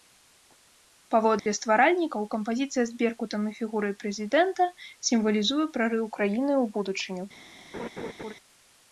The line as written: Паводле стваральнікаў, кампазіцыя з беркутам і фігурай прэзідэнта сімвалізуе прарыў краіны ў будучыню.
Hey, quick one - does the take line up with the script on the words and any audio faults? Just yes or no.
no